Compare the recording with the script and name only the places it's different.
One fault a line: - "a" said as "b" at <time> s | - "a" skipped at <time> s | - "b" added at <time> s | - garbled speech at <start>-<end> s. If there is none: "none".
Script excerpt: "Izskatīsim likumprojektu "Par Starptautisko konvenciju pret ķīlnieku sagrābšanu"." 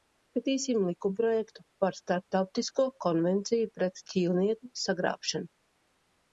none